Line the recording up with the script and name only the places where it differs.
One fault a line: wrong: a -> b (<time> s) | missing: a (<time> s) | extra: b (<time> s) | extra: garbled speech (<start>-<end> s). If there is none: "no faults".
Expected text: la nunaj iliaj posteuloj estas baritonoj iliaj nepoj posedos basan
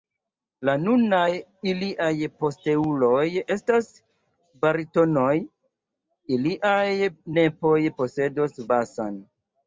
no faults